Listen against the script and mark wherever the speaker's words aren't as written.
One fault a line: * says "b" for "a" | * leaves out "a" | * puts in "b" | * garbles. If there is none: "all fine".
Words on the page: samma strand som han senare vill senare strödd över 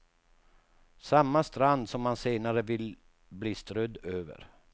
* says "bli" for "senare"